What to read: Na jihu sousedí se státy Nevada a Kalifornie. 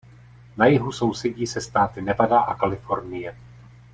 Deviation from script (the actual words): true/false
false